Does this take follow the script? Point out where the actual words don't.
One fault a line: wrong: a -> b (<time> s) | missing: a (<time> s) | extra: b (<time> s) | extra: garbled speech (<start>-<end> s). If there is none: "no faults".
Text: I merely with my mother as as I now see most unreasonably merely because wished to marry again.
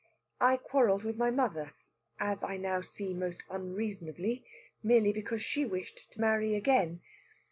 wrong: merely -> quarrelled (0.6 s)
missing: as (2.4 s)
extra: she (5.4 s)